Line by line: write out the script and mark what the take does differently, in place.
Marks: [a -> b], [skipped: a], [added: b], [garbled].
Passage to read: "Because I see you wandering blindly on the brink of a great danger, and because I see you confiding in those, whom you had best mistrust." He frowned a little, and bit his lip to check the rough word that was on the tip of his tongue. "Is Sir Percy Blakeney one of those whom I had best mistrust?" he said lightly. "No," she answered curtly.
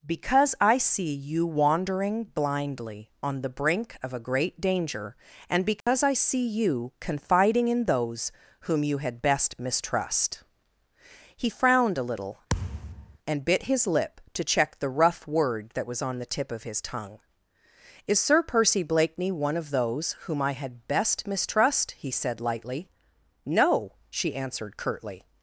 "Because I see you wandering blindly on the brink of a great danger, and because I see you confiding in those, whom you had best mistrust." He frowned a little, and bit his lip to check the rough word that was on the tip of his tongue. "Is Sir Percy Blakeney one of those whom I had best mistrust?" he said lightly. "No," she answered curtly.